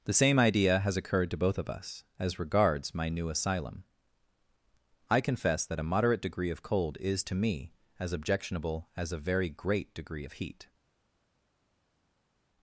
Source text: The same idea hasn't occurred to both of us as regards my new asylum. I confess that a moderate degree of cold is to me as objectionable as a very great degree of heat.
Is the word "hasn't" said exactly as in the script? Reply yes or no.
no